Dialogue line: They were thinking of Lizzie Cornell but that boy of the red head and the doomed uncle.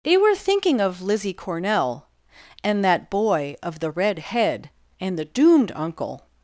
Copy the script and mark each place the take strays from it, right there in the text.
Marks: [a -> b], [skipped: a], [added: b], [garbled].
They were thinking of Lizzie Cornell [but -> and] that boy of the red head and the doomed uncle.